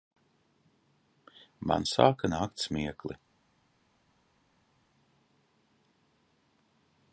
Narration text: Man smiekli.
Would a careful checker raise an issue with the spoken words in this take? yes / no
yes